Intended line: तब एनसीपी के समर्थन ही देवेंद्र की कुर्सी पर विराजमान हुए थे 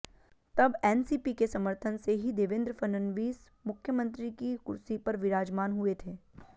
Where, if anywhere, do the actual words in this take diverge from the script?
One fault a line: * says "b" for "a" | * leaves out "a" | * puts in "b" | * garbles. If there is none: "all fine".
* puts in "से"
* puts in "फडणवीस मुख्यमंत्री"